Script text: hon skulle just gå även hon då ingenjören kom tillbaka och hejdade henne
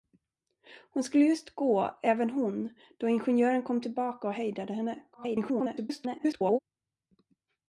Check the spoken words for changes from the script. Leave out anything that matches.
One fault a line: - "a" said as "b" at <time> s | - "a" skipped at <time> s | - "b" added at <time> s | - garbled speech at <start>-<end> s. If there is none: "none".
- garbled speech at 5.1-6.6 s